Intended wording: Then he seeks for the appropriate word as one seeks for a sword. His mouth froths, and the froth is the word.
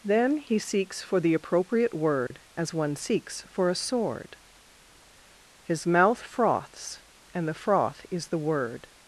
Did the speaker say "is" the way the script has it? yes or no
yes